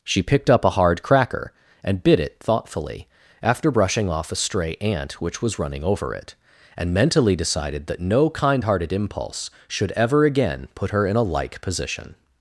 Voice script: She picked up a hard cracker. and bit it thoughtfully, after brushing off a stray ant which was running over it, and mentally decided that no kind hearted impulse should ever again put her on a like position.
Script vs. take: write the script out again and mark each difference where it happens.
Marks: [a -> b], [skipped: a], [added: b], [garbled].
She picked up a hard cracker. and bit it thoughtfully, after brushing off a stray ant which was running over it, and mentally decided that no kind hearted impulse should ever again put her [on -> in] a like position.